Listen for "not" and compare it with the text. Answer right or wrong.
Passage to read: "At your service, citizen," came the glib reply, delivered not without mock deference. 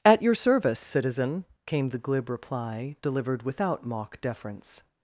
wrong